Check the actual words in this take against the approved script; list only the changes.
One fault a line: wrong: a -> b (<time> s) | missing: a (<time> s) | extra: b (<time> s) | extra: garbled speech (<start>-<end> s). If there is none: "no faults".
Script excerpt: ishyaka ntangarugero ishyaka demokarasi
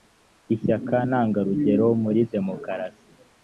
wrong: ishyaka -> muri (2.0 s)